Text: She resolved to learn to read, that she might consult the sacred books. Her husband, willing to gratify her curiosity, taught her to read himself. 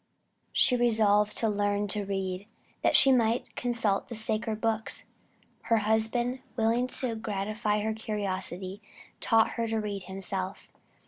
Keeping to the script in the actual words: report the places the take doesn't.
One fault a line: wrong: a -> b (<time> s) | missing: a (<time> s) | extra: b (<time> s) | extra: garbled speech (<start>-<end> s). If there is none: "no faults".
no faults